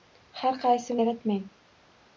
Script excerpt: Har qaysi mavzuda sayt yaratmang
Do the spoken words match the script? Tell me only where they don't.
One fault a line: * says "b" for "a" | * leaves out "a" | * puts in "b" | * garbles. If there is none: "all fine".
* leaves out "mavzuda sayt"